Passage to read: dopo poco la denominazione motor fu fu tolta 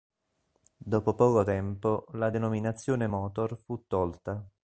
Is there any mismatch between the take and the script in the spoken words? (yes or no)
yes